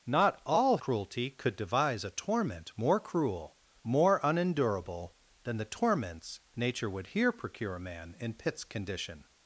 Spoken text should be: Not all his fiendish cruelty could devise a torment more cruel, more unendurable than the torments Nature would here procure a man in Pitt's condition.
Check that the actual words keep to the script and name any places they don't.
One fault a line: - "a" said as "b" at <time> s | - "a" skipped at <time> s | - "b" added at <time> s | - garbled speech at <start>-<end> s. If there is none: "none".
- "his fiendish" skipped at 0.8 s